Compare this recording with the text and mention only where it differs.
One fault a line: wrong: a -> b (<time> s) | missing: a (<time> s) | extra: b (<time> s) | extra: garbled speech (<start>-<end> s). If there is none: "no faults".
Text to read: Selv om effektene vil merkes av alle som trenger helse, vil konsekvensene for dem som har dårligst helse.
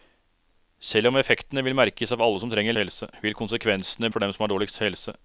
no faults